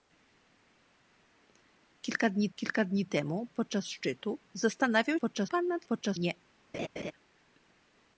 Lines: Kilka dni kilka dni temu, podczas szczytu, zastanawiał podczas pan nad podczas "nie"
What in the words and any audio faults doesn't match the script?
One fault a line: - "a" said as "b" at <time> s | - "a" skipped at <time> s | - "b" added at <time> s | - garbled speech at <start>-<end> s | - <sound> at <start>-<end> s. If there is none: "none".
- laugh at 6.7-7.1 s